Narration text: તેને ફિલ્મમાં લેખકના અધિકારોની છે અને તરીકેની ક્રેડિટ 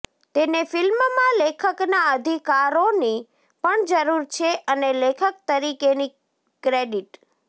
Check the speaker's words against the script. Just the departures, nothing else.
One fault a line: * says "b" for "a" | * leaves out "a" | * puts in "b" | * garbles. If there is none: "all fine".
* puts in "પણ જરૂર"
* puts in "લેખક"